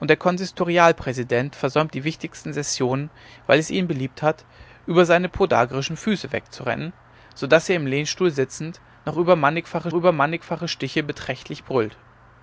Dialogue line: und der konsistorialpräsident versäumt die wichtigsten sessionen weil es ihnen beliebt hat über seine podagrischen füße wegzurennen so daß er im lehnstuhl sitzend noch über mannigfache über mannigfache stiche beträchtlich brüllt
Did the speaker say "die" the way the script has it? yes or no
yes